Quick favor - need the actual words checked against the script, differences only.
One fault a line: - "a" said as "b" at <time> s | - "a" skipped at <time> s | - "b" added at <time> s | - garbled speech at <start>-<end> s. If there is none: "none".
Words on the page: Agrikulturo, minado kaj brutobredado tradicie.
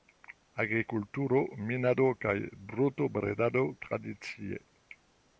none